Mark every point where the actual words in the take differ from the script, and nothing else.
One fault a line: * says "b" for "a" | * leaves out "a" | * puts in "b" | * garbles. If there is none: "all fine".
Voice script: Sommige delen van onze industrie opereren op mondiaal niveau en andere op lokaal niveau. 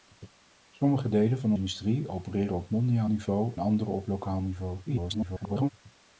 * leaves out "onze"
* leaves out "en"
* garbles